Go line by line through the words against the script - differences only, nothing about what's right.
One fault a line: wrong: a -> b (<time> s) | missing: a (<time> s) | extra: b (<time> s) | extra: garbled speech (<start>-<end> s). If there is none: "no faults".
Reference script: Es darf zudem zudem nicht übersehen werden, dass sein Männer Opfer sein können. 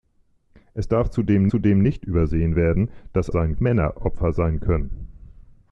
no faults